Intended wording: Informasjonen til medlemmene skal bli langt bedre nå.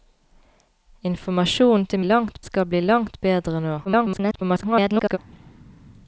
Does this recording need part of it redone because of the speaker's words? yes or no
yes